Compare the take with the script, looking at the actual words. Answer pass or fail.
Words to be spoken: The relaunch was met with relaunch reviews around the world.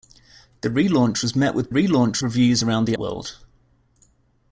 pass